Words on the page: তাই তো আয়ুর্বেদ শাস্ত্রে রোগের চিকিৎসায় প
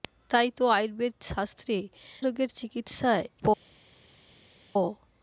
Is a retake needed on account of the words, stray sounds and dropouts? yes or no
no